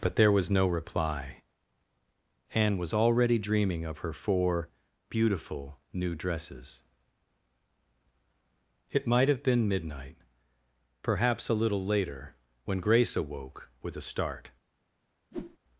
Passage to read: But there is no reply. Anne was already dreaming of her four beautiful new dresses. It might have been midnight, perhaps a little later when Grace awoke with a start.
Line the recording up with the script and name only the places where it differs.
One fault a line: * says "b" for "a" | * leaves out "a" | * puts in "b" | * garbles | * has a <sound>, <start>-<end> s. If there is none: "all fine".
* says "was" for "is"
* has a whoosh, 15.3-15.6 s